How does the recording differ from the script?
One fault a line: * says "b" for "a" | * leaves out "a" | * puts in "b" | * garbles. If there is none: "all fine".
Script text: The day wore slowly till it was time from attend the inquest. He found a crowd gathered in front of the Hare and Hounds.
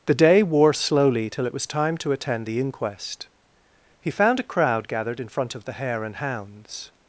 * says "to" for "from"